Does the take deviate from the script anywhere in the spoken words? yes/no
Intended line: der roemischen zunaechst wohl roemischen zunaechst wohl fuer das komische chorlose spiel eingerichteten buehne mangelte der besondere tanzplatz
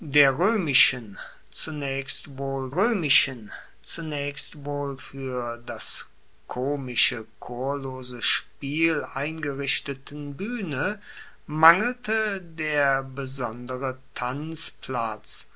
no